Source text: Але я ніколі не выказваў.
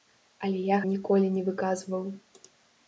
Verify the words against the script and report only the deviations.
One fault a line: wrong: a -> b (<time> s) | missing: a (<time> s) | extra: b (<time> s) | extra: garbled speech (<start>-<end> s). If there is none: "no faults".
no faults